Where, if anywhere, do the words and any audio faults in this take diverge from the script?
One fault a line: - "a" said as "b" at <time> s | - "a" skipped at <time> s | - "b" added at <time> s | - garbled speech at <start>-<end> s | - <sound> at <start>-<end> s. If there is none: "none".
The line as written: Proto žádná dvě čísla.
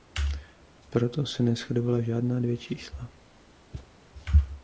- "se neshodovala" added at 1.2 s
- thud at 3.7-3.9 s